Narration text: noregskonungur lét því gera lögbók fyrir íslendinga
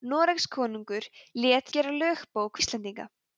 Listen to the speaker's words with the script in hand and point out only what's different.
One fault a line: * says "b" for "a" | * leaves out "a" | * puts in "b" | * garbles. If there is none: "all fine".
* leaves out "því"
* leaves out "fyrir"